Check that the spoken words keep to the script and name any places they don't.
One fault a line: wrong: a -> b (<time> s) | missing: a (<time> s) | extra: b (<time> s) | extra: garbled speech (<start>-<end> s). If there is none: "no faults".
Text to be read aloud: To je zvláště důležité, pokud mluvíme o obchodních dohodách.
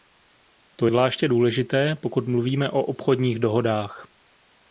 missing: je (0.9 s)